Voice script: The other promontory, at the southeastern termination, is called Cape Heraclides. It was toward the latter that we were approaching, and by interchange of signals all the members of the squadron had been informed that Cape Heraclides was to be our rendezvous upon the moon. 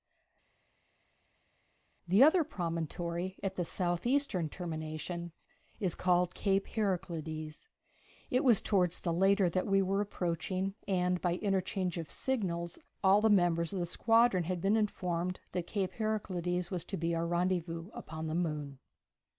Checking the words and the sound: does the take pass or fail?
pass